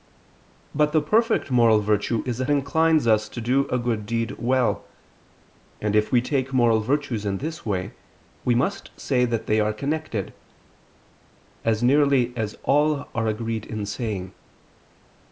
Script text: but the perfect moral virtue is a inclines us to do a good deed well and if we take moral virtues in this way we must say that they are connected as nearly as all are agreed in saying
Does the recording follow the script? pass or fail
pass